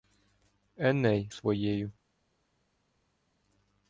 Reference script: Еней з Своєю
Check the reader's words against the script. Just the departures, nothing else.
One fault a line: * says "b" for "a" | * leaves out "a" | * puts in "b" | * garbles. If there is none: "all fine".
all fine